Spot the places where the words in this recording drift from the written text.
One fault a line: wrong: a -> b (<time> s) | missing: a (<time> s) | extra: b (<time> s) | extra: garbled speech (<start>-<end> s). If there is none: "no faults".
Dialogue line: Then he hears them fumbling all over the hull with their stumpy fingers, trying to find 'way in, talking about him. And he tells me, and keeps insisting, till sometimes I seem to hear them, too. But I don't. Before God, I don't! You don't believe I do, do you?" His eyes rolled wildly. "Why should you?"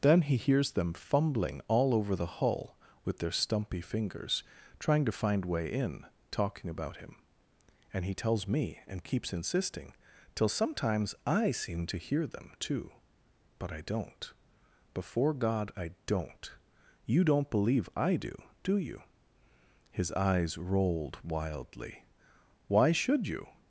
no faults